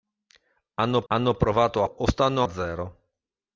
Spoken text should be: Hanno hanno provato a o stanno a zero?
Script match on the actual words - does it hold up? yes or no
yes